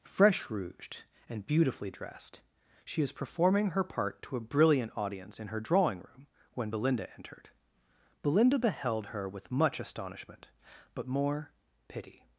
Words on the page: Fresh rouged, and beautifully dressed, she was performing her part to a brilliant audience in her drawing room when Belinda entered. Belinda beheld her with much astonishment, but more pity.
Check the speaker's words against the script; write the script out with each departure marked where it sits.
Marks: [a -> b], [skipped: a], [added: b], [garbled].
Fresh rouged, and beautifully dressed, she [was -> is] performing her part to a brilliant audience in her drawing room when Belinda entered. Belinda beheld her with much astonishment, but more pity.